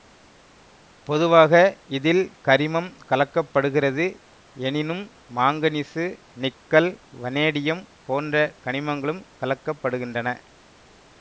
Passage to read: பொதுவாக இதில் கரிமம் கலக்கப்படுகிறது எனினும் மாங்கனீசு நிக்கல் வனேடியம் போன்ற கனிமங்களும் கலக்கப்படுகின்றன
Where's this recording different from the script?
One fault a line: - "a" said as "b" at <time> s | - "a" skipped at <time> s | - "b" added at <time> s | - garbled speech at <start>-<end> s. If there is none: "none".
none